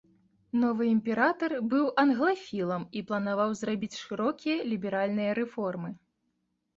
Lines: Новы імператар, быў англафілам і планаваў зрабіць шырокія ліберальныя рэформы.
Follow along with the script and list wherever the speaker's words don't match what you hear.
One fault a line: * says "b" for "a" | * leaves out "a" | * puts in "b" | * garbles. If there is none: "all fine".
all fine